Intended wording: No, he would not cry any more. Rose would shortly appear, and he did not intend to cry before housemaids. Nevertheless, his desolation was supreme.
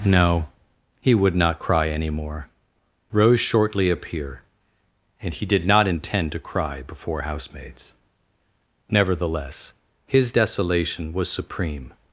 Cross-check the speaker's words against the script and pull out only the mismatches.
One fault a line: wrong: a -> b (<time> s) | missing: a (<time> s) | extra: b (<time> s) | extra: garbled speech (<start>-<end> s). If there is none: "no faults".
missing: would (3.4 s)